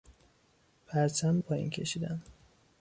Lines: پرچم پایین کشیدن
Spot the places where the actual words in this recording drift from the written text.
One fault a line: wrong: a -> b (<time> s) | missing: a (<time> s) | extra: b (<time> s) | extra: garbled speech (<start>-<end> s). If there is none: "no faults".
no faults